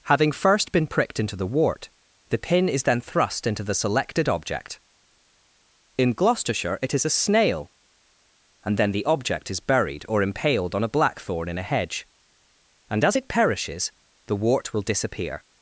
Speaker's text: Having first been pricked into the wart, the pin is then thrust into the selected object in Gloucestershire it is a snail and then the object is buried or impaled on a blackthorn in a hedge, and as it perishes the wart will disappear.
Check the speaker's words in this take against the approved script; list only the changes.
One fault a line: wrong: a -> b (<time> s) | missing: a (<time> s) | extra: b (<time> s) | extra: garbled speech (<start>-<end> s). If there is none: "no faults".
no faults